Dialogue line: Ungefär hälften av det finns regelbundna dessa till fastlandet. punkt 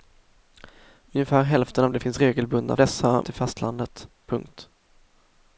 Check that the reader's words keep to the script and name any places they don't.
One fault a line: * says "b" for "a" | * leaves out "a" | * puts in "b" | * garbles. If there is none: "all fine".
all fine